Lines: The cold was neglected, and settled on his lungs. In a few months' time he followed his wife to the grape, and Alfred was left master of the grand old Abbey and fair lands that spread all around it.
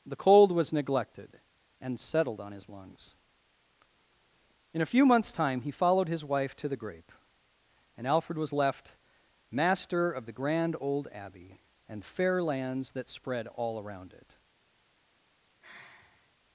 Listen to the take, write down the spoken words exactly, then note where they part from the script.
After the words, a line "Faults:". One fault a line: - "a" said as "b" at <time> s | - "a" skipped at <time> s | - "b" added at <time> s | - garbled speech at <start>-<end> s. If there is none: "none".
The cold was neglected, and settled on his lungs. In a few months' time he followed his wife to the grape, and Alfred was left master of the grand old Abbey and fair lands that spread all around it.
Faults:
none